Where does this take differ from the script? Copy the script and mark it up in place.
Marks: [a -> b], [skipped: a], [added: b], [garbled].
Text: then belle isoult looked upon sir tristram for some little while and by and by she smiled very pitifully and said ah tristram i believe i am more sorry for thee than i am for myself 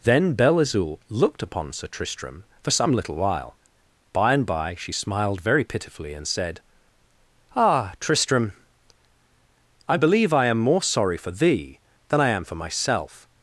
then belle isoult looked upon sir tristram for some little while [skipped: and] by and by she smiled very pitifully and said ah tristram i believe i am more sorry for thee than i am for myself